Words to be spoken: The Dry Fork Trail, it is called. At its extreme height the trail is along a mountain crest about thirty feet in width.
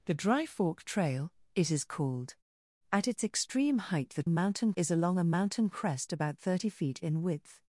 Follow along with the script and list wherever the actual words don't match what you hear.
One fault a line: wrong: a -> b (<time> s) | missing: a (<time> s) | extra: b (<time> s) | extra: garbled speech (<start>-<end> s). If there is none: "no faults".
wrong: trail -> mountain (4.3 s)